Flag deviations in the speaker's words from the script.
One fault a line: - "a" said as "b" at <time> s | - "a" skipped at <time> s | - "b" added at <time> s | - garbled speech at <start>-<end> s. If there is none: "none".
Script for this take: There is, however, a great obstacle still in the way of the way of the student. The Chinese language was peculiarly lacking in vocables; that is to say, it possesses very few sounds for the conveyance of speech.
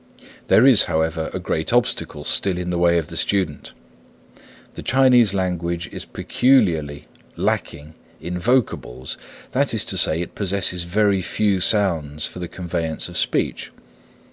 - "way of the" skipped at 3.2 s
- "was" said as "is" at 5.9 s